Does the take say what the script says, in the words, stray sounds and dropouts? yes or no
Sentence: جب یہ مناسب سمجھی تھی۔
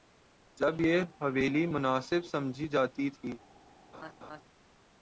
no